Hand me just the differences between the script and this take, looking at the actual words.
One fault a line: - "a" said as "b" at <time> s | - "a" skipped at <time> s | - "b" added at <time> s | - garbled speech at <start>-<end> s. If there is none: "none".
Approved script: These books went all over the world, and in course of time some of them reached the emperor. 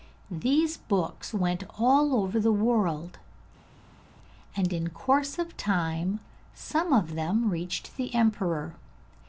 none